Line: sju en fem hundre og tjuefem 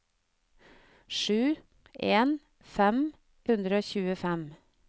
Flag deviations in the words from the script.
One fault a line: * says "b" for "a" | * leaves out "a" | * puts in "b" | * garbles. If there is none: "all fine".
all fine